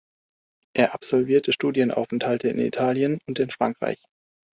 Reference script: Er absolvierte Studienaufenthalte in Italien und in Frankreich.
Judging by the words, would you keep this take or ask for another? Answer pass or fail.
pass